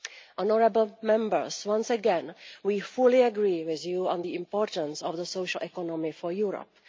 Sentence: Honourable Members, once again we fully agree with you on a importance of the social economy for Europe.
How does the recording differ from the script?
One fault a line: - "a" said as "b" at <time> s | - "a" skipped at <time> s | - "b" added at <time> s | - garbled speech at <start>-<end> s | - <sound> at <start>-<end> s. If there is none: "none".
- "a" said as "the" at 4.2 s